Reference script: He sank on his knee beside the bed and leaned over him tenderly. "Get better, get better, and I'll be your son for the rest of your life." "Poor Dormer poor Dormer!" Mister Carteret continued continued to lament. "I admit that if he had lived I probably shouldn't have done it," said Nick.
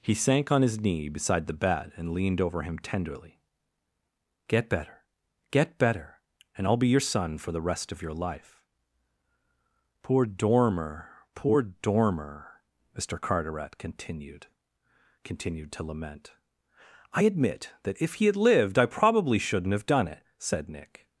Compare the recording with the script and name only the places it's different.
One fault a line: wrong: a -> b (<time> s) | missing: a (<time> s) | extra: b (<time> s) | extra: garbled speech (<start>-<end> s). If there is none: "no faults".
no faults